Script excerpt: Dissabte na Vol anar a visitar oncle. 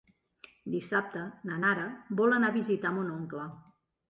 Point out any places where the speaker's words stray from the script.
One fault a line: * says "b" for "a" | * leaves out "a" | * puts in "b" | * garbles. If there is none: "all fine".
* puts in "Nara"
* puts in "mon"